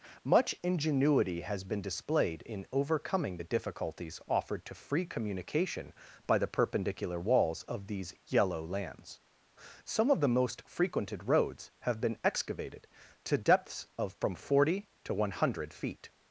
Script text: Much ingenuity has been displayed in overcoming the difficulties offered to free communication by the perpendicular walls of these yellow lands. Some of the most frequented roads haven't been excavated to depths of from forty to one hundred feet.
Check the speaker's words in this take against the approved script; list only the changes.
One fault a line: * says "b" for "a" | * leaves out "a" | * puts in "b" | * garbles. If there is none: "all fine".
* says "have" for "haven't"